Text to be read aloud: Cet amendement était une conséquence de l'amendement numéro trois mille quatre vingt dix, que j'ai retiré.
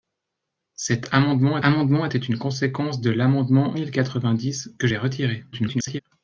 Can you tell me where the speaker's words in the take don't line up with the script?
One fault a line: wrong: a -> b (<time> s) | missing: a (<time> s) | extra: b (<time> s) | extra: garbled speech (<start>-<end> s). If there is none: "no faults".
extra: amendement (1.6 s)
missing: numéro trois (3.8 s)
extra: garbled speech (5.5-6.0 s)